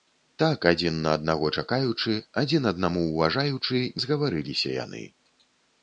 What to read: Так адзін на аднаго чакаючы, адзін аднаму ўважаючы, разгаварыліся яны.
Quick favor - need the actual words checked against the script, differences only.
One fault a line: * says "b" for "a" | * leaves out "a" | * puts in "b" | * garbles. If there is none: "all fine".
all fine